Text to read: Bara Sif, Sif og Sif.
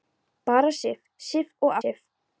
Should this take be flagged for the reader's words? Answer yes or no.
no